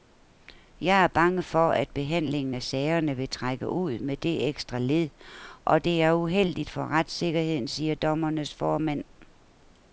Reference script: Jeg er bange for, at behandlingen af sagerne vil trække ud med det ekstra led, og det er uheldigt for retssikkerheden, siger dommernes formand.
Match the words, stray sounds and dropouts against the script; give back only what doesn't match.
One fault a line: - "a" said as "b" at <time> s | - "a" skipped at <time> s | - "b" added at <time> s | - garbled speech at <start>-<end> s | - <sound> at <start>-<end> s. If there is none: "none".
none